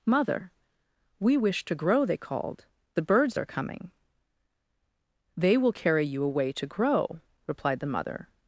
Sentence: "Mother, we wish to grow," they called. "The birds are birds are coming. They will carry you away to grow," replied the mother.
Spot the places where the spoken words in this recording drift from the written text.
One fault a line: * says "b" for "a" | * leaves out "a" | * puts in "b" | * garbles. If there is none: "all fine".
* leaves out "birds are"